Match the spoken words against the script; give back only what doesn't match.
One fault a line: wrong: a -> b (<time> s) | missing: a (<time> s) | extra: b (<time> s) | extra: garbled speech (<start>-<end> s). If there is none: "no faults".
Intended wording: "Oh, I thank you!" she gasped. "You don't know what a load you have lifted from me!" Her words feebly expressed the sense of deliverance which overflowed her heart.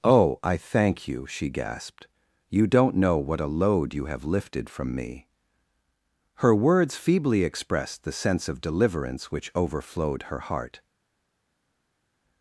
no faults